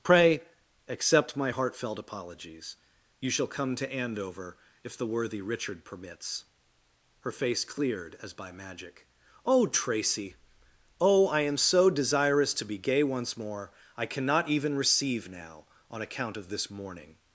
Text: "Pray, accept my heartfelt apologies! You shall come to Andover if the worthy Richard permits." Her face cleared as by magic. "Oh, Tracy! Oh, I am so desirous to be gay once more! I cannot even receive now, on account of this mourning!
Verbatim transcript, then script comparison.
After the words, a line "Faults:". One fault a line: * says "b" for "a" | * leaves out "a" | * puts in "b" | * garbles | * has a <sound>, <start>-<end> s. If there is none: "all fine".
"Pray, accept my heartfelt apologies! You shall come to Andover if the worthy Richard permits." Her face cleared as by magic. "Oh, Tracy! Oh, I am so desirous to be gay once more! I cannot even receive now, on account of this mourning!
Faults:
all fine